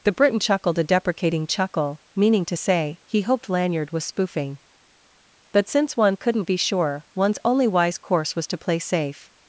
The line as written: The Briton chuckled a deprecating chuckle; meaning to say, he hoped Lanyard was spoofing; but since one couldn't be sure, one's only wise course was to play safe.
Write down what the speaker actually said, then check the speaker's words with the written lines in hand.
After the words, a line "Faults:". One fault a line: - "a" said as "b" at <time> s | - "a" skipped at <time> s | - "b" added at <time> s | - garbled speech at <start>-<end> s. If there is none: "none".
The Briton chuckled a deprecating chuckle; meaning to say, he hoped Lanyard was spoofing; but since one couldn't be sure, one's only wise course was to play safe.
Faults:
none